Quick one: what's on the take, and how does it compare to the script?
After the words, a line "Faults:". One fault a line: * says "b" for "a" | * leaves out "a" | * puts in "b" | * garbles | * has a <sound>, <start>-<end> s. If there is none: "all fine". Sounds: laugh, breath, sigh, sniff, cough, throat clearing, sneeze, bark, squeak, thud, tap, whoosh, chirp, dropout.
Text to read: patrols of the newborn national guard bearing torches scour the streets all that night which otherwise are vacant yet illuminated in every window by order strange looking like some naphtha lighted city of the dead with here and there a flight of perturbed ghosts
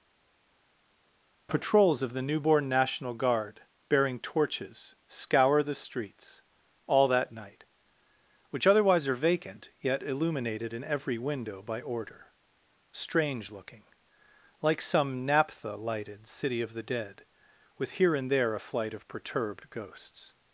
patrols of the newborn national guard bearing torches scour the streets all that night which otherwise are vacant yet illuminated in every window by order strange looking like some naphtha lighted city of the dead with here and there a flight of perturbed ghosts
Faults:
all fine